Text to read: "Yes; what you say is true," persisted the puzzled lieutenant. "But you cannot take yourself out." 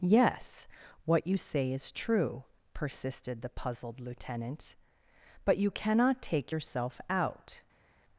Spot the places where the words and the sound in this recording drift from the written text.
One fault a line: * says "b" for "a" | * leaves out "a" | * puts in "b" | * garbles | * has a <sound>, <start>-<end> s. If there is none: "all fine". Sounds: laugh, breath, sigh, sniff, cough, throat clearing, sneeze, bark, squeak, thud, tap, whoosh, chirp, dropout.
all fine